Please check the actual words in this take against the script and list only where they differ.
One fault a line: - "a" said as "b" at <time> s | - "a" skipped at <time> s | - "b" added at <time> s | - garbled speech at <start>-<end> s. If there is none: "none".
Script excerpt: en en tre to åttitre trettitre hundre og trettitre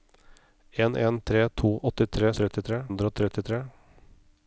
none